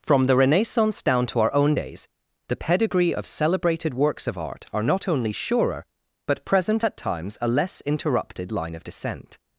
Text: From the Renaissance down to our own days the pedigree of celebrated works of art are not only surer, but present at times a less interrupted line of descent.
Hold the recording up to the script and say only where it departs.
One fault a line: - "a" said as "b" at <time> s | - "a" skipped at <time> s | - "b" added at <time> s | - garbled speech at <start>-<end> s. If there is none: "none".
none